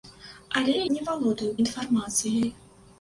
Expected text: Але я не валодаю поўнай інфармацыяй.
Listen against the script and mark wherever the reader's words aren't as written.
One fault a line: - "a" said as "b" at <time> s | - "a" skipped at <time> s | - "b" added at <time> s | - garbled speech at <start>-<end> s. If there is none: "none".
- "я" skipped at 0.8 s
- "поўнай" skipped at 1.5 s